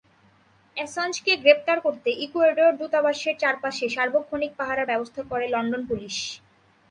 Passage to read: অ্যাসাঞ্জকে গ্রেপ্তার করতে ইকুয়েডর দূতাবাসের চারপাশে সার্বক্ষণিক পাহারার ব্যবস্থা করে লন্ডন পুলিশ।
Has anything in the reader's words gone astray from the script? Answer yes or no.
no